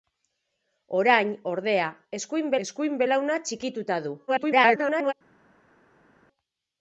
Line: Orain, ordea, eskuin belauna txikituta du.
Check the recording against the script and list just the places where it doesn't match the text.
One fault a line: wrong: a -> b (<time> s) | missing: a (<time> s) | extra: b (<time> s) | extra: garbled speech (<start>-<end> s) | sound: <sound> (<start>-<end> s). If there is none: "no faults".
extra: eskuin (2.7 s)
extra: garbled speech (4.3-5.1 s)